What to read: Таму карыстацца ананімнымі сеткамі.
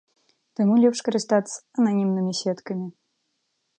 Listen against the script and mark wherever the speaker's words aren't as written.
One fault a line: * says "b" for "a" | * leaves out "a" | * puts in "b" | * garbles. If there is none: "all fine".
* puts in "лепш"